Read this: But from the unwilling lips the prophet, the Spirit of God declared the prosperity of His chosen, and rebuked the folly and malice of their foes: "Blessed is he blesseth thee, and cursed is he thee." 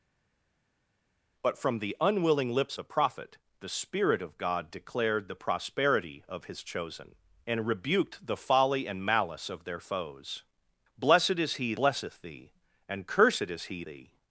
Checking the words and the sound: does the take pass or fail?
pass